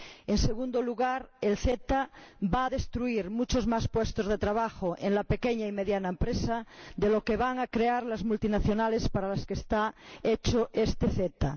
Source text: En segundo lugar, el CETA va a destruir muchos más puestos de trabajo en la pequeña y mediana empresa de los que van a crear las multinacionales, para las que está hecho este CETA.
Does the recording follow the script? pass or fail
pass